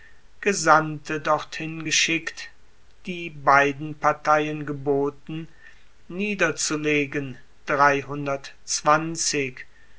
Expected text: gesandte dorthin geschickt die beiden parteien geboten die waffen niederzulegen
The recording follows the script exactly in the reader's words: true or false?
false